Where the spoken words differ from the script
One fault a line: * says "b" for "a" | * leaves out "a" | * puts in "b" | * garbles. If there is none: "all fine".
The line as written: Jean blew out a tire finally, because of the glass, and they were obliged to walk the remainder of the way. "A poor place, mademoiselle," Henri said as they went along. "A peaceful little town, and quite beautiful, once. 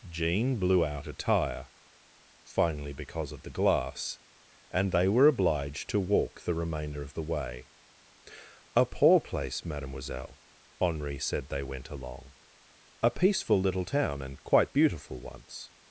* leaves out "as"